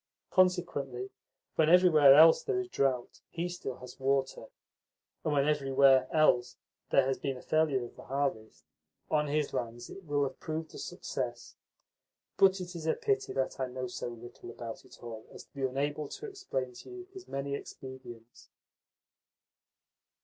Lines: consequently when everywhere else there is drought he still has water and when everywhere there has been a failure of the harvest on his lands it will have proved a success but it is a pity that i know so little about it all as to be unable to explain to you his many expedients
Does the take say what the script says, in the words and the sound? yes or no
no